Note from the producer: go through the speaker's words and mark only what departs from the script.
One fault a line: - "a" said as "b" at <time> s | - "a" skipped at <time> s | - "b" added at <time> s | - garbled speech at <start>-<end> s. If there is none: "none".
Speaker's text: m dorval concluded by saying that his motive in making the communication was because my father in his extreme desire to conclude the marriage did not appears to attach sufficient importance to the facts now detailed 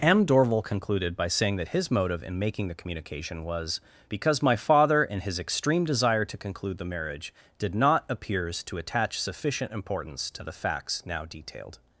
none